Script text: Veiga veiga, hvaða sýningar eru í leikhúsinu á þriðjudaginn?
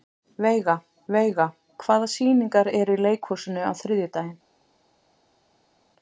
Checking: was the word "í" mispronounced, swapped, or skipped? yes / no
no